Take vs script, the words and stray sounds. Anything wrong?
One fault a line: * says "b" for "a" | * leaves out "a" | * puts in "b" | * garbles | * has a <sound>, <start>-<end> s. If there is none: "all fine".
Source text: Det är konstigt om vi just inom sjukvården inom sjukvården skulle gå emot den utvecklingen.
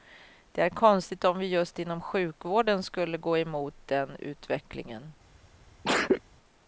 * leaves out "inom sjukvården"
* has a sneeze, 5.8-6.2 s